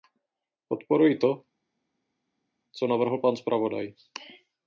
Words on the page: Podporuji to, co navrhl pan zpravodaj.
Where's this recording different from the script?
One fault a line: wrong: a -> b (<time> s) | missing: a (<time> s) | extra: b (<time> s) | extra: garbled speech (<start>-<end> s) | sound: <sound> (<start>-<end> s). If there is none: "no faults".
no faults